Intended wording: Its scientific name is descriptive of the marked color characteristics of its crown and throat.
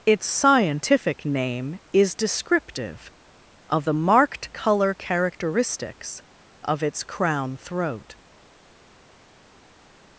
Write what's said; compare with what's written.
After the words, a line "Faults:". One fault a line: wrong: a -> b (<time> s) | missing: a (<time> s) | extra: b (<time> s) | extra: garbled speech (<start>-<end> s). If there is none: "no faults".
Its scientific name is descriptive of the marked color characteristics of its crown throat.
Faults:
missing: and (7.5 s)